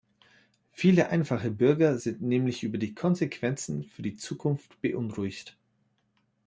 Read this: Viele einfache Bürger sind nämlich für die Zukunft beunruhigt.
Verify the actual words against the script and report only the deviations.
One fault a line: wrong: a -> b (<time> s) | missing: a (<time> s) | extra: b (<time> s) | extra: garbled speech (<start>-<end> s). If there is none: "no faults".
extra: über die Konsequenzen (2.6 s)